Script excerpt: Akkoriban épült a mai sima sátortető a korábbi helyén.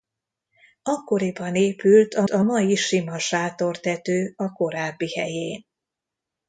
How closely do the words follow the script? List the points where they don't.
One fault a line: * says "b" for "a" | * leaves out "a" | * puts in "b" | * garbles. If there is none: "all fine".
* puts in "a"